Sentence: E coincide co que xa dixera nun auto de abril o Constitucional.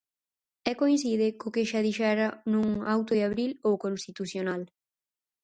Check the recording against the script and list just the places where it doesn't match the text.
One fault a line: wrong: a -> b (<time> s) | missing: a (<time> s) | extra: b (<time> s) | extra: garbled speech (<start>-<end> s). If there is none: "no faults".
no faults